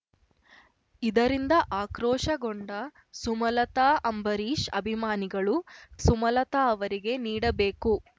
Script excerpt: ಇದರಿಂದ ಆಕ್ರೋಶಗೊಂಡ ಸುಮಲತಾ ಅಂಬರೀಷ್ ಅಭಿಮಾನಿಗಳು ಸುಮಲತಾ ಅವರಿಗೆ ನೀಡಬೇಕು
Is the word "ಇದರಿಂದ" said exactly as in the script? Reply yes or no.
yes